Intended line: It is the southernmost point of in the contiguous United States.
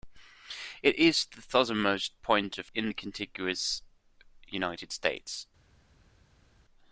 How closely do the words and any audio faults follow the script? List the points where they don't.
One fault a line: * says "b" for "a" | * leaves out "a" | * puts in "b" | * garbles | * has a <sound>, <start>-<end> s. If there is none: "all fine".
all fine